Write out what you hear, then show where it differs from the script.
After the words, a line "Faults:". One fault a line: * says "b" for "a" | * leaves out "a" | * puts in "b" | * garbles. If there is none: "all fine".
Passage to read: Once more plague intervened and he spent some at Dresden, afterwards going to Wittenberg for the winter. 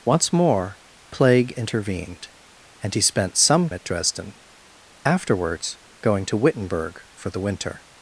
Once more plague intervened and he spent some at Dresden, afterwards going to Wittenberg for the winter.
Faults:
all fine